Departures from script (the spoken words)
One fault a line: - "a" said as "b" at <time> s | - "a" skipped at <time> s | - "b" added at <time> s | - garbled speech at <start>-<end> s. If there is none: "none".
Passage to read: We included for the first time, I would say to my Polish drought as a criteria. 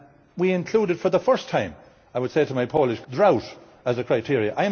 none